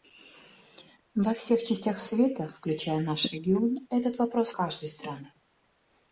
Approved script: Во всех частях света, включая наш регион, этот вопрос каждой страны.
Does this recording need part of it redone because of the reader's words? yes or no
no